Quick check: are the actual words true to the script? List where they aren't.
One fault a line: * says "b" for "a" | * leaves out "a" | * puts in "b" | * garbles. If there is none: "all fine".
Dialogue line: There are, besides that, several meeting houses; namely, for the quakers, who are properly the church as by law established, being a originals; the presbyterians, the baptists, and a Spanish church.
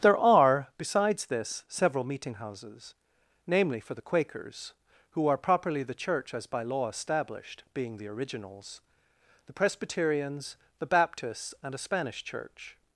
* says "this" for "that"
* says "the" for "a"